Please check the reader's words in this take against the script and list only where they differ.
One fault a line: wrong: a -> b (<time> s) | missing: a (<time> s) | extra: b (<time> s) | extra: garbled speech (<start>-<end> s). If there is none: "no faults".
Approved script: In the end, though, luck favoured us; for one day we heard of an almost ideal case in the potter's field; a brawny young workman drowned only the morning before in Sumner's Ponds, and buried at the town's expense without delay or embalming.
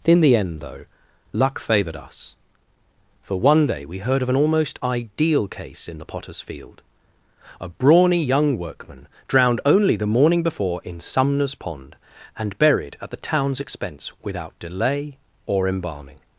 wrong: Ponds -> Pond (11.5 s)